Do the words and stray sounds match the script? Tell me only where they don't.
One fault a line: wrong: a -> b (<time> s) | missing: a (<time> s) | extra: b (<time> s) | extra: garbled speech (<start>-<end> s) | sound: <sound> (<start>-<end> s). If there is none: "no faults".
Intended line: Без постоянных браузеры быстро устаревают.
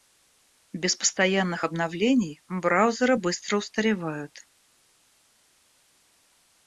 extra: обновлений (1.6 s)